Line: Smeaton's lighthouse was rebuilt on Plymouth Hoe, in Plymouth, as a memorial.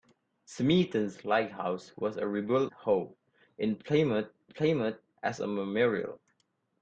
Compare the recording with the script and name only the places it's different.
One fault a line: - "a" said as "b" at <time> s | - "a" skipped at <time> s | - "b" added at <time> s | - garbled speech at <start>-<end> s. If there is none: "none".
- "on Plymouth" skipped at 2.7 s
- "Plymouth" added at 4.5 s